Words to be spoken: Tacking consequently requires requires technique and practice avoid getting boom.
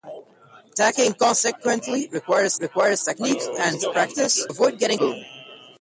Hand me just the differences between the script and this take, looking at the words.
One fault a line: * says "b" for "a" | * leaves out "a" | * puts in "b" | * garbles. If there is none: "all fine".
all fine